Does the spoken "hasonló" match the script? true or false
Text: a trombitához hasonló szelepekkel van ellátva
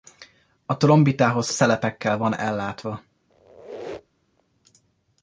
false